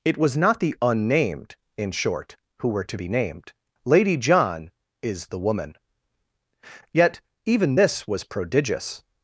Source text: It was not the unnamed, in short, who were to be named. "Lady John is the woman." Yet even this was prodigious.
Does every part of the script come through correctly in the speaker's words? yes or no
yes